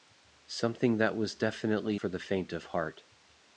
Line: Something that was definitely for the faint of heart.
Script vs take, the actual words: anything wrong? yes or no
no